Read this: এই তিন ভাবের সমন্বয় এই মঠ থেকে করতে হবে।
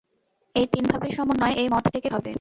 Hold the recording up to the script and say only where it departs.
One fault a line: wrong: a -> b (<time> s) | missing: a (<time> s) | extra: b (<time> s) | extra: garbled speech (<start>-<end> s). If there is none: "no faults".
missing: করতে (2.1 s)